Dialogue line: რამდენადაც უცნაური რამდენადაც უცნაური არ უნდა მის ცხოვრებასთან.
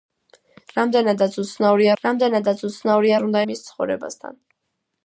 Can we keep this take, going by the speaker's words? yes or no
yes